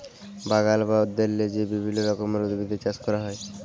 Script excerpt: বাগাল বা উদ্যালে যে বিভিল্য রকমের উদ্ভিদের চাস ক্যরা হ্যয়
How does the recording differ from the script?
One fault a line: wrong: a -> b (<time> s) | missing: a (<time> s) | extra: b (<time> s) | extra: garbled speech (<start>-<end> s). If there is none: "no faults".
no faults